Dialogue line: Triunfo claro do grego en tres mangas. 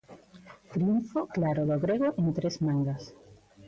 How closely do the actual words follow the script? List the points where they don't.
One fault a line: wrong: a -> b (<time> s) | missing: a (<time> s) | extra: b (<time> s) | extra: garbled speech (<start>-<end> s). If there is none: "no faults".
no faults